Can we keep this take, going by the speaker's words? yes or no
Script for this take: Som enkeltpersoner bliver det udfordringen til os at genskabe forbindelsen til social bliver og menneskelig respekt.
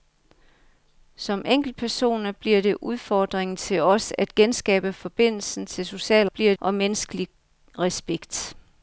yes